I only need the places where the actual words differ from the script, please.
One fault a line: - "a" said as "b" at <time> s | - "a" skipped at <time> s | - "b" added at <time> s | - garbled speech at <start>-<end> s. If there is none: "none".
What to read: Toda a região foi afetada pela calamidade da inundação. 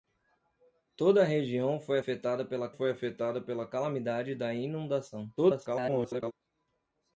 - "foi afetada pela" added at 2.7 s
- garbled speech at 5.4-6.3 s